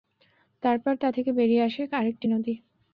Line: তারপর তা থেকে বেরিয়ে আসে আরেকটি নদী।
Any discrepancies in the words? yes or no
no